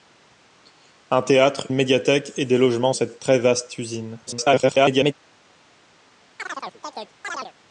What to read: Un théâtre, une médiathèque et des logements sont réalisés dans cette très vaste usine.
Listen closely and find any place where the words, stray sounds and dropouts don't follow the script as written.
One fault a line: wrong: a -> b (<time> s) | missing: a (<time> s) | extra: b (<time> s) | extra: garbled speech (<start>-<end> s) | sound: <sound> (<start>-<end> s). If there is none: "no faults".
missing: une (1.7 s)
missing: sont réalisés dans (2.9 s)
extra: garbled speech (4.3-5.1 s)
sound: chirp (6.4-7.5 s)